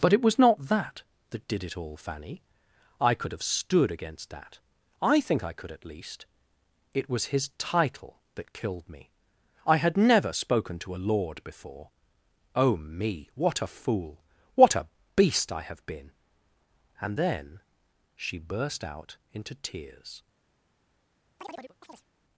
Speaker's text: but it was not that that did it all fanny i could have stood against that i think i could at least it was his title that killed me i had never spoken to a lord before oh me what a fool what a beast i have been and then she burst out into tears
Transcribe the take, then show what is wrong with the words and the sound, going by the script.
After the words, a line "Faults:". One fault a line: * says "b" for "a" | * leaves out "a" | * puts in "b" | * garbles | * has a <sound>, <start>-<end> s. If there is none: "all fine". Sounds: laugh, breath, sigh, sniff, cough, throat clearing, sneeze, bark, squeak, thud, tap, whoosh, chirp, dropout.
but it was not that that did it all fanny i could have stood against that i think i could at least it was his title that killed me i had never spoken to a lord before oh me what a fool what a beast i have been and then she burst out into tears
Faults:
* has a chirp, 21.4-22.1 s